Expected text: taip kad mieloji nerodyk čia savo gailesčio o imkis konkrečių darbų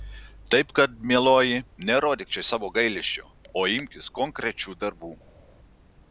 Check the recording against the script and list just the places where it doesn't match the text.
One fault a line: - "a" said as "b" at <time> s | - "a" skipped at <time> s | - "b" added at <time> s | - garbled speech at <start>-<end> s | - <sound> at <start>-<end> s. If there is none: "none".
none